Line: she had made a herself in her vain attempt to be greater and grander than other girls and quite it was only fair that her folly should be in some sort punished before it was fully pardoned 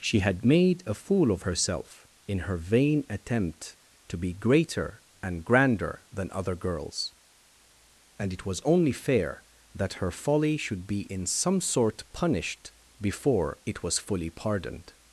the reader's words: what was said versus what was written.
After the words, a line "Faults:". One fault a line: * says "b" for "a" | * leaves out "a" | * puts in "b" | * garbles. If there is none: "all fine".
she had made a fool of herself in her vain attempt to be greater and grander than other girls and it was only fair that her folly should be in some sort punished before it was fully pardoned
Faults:
* puts in "fool of"
* leaves out "quite"